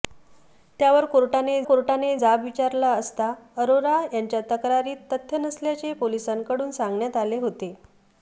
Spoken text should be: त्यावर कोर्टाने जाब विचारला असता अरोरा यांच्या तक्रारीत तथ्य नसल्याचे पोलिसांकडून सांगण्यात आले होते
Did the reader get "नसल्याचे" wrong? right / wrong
right